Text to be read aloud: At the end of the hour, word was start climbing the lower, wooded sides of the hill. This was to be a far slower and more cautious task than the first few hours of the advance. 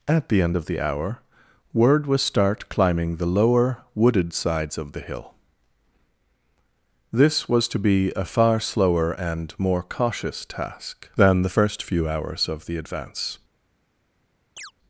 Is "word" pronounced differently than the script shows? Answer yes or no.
no